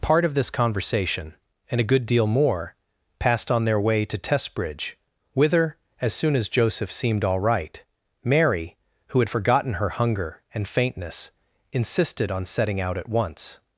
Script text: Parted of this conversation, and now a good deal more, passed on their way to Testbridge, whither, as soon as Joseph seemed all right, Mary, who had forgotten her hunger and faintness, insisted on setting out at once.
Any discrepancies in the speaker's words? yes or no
yes